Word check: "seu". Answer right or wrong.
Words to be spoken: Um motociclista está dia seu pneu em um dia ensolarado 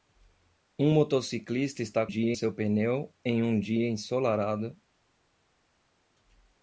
right